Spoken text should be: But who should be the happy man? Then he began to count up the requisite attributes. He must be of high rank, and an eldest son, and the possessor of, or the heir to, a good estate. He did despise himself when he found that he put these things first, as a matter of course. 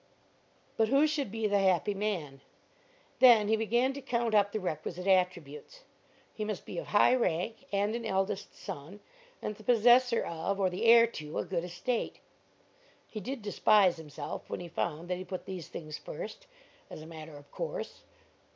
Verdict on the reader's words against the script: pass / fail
pass